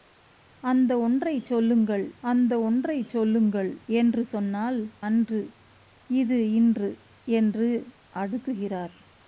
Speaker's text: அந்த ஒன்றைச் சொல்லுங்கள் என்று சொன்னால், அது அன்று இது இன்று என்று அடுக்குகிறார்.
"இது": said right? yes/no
yes